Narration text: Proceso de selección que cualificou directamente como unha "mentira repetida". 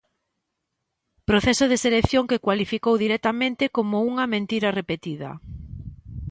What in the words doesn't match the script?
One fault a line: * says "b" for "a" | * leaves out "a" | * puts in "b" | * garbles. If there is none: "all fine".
all fine